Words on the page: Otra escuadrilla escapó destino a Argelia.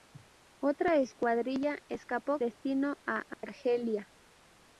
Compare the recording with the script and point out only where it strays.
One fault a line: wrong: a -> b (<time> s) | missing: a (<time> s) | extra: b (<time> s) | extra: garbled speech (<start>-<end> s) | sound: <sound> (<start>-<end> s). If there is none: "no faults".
sound: dropout (3.3-3.4 s)